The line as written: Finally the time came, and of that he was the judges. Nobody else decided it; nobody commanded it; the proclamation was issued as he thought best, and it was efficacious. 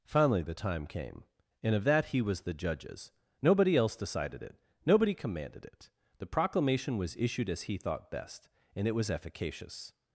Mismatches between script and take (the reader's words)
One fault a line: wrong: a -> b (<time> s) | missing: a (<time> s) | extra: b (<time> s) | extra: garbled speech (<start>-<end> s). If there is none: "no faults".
no faults